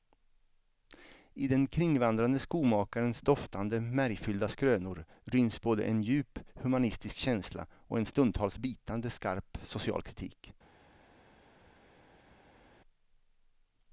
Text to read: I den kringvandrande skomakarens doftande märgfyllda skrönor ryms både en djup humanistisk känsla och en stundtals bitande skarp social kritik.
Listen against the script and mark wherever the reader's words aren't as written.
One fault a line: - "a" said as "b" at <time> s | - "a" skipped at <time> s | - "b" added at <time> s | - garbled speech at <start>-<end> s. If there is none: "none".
none